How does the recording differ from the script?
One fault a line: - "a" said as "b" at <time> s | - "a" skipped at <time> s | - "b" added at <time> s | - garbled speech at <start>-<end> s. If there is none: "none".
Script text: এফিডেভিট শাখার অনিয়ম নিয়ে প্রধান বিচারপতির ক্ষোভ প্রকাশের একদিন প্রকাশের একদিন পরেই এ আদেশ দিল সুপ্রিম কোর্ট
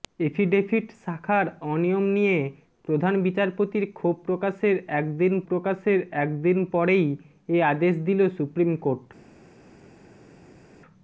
none